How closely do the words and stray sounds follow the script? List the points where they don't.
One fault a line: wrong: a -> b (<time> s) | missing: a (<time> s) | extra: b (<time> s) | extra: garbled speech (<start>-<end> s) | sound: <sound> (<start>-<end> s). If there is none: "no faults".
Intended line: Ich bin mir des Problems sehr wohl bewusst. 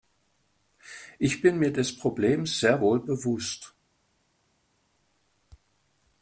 no faults